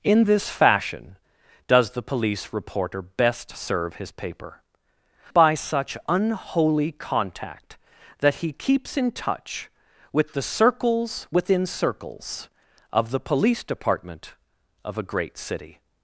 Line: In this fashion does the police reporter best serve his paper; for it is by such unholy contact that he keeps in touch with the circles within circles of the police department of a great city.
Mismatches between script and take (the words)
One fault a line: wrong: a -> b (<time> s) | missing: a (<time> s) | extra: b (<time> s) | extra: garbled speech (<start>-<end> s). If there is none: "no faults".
missing: for it is (4.6 s)